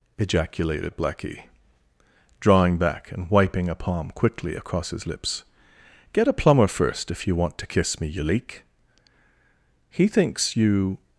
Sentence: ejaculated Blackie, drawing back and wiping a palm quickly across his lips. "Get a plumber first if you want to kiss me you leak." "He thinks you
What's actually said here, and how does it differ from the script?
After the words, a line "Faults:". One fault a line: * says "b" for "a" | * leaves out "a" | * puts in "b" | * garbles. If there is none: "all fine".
ejaculated Blackie, drawing back and wiping a palm quickly across his lips. "Get a plumber first if you want to kiss me you leak." "He thinks you
Faults:
all fine